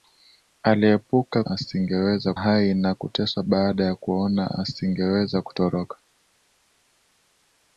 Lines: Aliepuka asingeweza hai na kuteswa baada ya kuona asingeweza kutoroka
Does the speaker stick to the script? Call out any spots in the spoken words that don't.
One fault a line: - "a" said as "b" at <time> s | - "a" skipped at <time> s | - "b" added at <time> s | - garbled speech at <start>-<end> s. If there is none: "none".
none